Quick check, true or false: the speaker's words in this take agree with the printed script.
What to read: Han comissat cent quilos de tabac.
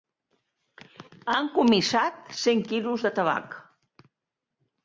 true